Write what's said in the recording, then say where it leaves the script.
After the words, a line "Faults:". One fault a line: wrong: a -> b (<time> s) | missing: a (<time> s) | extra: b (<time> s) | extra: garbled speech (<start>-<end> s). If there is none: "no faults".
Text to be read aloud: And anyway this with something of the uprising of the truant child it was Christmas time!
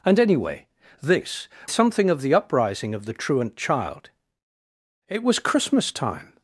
And anyway this something of the uprising of the truant child it was Christmas time!
Faults:
missing: with (1.5 s)